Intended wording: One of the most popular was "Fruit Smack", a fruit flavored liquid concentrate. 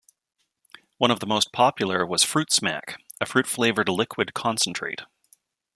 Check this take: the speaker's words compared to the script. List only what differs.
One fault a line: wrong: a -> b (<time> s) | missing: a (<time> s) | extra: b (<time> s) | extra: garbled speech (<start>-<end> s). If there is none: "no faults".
no faults